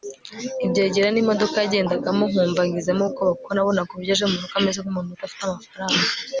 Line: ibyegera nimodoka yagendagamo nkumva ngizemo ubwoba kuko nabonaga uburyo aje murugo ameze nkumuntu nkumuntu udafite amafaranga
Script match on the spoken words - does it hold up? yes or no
no